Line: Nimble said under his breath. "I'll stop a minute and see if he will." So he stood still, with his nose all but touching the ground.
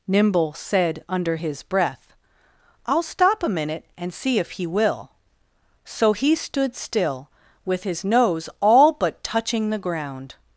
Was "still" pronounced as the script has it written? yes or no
yes